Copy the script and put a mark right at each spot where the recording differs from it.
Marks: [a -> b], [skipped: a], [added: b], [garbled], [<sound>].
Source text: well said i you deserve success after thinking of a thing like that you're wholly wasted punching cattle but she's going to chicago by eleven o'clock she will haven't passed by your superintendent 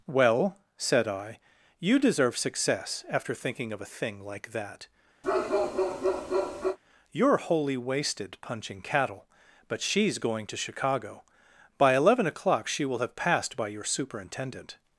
well said i you deserve success after thinking of a thing like that [bark] you're wholly wasted punching cattle but she's going to chicago by eleven o'clock she will [haven't -> have] passed by your superintendent